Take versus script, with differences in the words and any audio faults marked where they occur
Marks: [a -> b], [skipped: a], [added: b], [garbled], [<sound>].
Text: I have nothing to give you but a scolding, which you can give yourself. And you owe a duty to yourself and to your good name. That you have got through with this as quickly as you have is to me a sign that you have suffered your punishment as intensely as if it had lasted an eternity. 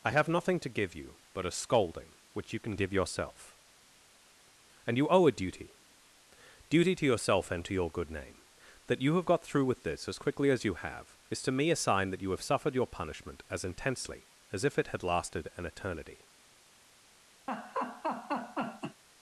I have nothing to give you but a scolding, which you can give yourself. And you owe a duty [added: duty] to yourself and to your good name. That you have got through with this as quickly as you have is to me a sign that you have suffered your punishment as intensely as if it had lasted an eternity. [laugh]